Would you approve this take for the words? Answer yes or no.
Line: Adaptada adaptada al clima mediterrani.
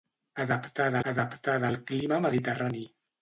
yes